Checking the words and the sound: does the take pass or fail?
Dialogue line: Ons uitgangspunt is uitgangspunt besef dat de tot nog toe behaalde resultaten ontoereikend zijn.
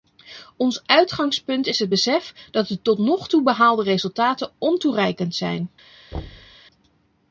fail